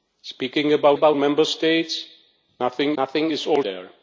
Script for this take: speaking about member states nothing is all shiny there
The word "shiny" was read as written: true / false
false